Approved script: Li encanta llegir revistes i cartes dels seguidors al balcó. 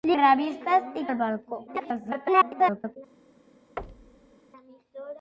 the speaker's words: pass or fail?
fail